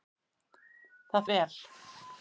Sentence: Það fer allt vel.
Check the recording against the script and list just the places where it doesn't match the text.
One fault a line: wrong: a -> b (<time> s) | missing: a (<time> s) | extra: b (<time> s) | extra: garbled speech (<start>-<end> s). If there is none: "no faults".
missing: fer allt (1.3 s)